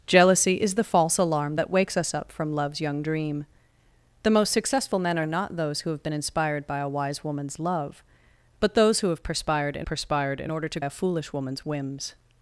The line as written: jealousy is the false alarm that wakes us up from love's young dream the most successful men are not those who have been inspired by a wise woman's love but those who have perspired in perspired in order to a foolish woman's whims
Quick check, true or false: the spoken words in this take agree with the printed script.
true